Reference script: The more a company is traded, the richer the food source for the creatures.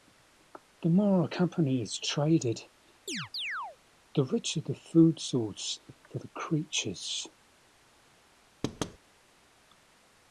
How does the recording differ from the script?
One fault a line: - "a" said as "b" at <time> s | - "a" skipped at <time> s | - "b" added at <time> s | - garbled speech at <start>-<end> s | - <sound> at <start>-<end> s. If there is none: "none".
- chirp at 3.1-3.8 s
- thud at 8.6-9.0 s